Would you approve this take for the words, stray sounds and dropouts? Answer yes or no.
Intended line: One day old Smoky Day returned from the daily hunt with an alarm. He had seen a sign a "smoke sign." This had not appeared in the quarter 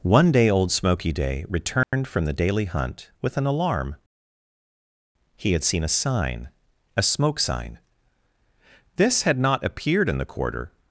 no